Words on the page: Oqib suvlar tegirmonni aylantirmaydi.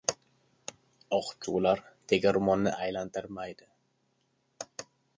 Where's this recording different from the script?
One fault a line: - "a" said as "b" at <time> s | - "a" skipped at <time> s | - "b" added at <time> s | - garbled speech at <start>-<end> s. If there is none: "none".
none